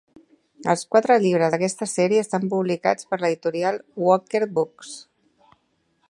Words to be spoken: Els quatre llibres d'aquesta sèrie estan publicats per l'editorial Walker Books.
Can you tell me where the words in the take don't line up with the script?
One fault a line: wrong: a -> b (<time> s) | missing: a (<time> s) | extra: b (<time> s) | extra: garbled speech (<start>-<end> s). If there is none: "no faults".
no faults